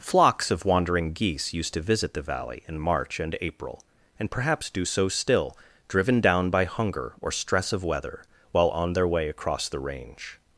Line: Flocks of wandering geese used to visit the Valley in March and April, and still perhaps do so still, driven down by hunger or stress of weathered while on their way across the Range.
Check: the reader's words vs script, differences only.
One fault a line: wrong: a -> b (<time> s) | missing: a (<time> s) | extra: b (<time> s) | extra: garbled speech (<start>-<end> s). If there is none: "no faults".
missing: still (4.3 s)
wrong: weathered -> weather (7.8 s)